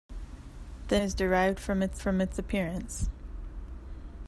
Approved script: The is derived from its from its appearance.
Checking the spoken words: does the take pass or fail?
pass